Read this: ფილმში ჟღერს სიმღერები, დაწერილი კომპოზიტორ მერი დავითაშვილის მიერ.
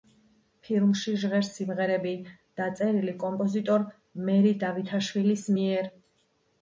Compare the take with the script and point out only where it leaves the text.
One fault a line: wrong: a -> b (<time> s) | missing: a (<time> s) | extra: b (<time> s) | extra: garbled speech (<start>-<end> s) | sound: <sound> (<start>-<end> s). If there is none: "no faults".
no faults